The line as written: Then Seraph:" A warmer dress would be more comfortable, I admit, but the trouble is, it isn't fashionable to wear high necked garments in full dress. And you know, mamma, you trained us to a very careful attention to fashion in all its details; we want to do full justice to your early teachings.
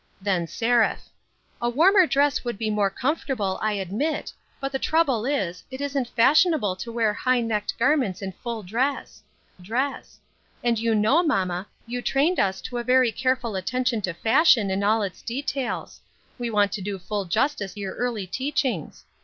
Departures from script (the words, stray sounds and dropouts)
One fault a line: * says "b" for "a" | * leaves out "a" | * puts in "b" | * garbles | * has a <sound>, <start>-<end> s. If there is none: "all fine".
* puts in "dress"
* leaves out "to"